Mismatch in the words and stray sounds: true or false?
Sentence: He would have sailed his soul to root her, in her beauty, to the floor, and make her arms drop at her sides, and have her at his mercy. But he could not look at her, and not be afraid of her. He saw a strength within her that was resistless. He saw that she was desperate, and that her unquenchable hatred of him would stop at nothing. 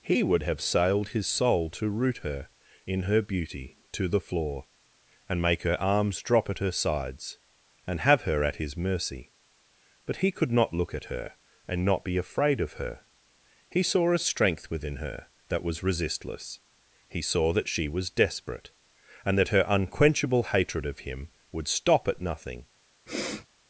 true